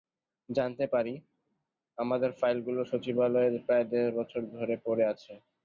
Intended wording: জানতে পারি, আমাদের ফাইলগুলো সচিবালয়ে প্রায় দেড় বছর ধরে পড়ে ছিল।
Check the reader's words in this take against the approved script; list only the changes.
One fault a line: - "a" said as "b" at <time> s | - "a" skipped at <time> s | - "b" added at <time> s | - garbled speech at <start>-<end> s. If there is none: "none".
- "ছিল" said as "আছে" at 5.1 s